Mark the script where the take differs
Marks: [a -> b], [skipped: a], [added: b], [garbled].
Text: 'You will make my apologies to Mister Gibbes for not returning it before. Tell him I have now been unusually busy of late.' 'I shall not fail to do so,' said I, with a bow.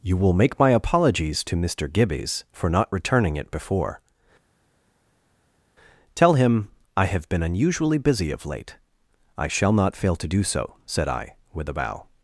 'You will make my apologies to Mister Gibbes for not returning it before. Tell him I have [skipped: now] been unusually busy of late.' 'I shall not fail to do so,' said I, with a bow.